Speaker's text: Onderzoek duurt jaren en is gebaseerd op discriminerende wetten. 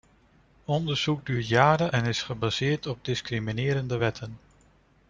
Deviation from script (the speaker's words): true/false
false